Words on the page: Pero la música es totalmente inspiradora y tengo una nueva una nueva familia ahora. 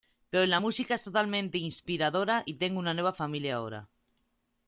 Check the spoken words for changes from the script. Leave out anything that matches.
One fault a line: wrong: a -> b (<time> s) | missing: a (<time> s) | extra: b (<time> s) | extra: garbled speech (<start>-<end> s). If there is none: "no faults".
missing: una nueva (3.1 s)